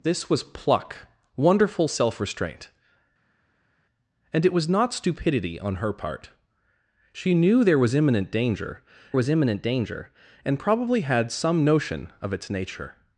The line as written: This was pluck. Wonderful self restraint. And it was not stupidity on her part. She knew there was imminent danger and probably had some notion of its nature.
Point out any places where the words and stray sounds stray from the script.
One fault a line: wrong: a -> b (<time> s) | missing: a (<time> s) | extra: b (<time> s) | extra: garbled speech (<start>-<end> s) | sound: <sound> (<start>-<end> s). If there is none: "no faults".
extra: was imminent danger (9.1 s)